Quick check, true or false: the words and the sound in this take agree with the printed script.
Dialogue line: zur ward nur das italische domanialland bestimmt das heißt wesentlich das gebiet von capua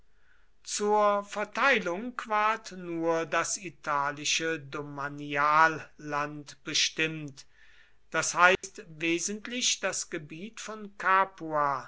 false